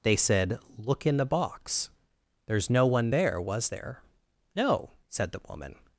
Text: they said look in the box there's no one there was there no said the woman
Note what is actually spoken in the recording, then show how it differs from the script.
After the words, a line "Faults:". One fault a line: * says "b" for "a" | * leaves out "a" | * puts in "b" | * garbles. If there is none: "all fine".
they said look in the box there's no one there was there no said the woman
Faults:
all fine